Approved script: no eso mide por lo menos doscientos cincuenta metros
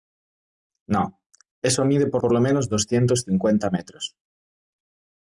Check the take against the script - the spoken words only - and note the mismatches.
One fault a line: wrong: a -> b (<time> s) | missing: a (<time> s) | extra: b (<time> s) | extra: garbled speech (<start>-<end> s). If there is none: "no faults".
extra: por (2.2 s)